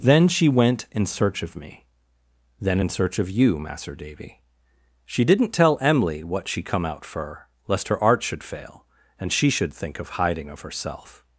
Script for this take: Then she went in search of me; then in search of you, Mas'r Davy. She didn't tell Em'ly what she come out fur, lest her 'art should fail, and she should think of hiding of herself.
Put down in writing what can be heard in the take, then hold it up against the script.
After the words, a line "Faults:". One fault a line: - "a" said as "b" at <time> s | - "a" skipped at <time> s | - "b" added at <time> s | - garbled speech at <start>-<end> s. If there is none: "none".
Then she went in search of me; then in search of you, Mas'r Davy. She didn't tell Em'ly what she come out fur, lest her 'art should fail, and she should think of hiding of herself.
Faults:
none